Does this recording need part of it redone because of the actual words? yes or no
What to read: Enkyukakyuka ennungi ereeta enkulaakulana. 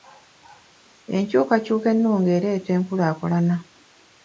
no